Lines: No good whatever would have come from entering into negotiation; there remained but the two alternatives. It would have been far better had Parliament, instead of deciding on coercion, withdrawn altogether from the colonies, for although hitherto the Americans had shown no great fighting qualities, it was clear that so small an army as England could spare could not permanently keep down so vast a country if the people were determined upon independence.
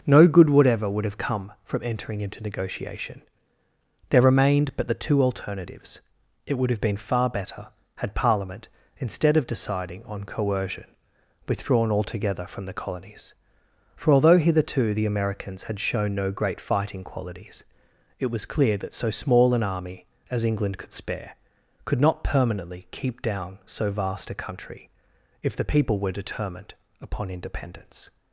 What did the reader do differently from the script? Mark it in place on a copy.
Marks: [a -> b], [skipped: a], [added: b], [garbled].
No good whatever would have come from entering into negotiation; there remained but the two alternatives. It would have been far better had Parliament, instead of deciding on coercion, withdrawn altogether from the colonies, for although hitherto the Americans had shown no great fighting qualities, it was clear that so small an army as England could spare could not permanently keep down so vast a country if the people were determined upon independence.